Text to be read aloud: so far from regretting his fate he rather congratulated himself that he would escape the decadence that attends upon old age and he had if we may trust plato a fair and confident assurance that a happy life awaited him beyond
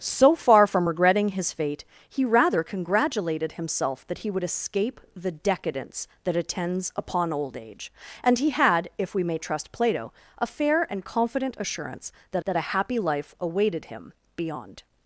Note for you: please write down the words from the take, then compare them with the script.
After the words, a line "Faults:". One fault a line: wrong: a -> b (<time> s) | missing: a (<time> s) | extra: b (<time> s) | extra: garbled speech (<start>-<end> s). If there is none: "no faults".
so far from regretting his fate he rather congratulated himself that he would escape the decadence that attends upon old age and he had if we may trust plato a fair and confident assurance that that a happy life awaited him beyond
Faults:
extra: that (12.4 s)